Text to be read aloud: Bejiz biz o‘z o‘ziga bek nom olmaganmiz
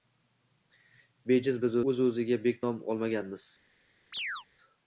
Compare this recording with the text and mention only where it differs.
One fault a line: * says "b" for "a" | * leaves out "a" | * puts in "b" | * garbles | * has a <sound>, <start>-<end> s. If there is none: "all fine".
* has a chirp, 4.1-4.4 s